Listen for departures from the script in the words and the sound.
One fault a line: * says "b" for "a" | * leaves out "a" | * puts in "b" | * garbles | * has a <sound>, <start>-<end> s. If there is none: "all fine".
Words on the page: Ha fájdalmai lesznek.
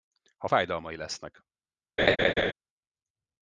* has a laugh, 2.0-2.5 s